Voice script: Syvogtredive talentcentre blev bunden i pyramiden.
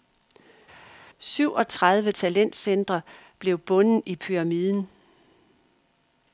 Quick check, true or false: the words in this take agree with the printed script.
true